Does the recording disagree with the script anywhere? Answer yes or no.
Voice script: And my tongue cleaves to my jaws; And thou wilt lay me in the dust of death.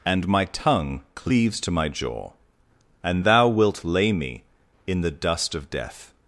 yes